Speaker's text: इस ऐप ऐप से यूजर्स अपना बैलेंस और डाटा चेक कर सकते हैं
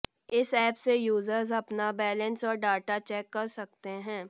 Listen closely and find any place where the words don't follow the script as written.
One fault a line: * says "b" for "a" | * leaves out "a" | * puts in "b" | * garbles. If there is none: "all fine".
* leaves out "ऐप"